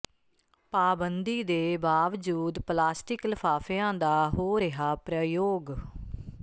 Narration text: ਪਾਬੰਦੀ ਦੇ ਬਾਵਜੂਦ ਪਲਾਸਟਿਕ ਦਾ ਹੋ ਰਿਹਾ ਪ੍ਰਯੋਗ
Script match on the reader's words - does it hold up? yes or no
no